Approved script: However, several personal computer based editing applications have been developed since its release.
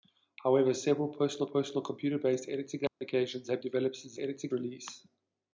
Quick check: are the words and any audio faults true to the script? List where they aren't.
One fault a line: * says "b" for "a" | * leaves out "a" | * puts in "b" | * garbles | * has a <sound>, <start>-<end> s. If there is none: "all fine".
* puts in "personal"
* has a dropout, 2.9-3.0 s
* leaves out "been"
* says "editing" for "its"